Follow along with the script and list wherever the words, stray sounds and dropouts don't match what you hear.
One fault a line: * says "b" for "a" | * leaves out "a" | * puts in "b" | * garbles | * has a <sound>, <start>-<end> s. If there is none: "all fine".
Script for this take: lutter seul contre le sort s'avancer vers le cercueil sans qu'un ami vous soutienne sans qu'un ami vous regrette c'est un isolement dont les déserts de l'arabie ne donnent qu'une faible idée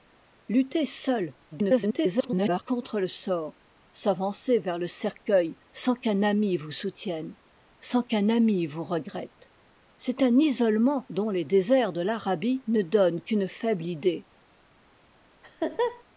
* garbles
* has a laugh, 15.4-16.0 s